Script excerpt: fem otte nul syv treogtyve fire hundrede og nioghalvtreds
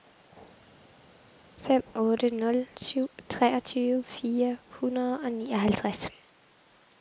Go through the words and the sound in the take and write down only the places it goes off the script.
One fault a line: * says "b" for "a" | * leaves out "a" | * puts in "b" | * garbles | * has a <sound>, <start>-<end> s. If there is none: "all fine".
all fine